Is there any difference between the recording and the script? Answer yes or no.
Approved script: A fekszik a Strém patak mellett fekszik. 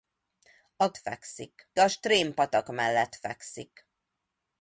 no